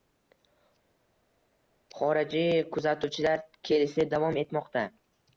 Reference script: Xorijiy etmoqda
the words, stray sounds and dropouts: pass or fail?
fail